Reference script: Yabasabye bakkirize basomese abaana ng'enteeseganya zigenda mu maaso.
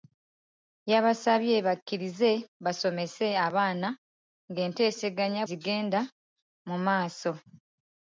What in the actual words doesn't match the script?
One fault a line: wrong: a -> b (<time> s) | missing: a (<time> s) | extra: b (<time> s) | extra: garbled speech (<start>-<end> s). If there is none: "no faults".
no faults